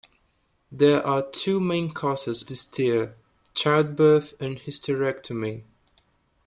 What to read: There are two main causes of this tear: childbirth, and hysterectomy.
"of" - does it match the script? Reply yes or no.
no